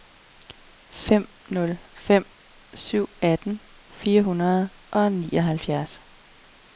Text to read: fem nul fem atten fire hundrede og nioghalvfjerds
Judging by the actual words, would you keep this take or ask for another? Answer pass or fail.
fail